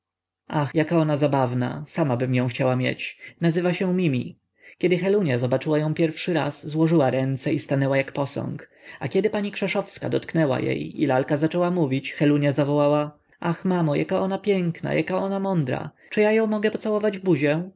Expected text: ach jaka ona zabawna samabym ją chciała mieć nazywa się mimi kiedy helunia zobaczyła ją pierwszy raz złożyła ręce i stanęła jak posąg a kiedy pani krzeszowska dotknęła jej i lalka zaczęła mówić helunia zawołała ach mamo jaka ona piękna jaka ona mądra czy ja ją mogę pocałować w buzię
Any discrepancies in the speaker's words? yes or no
no